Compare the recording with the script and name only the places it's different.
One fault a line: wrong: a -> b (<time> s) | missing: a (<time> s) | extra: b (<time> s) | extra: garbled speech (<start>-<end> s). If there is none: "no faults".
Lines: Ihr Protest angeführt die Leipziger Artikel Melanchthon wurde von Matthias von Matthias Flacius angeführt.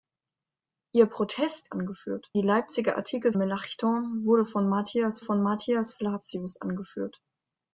no faults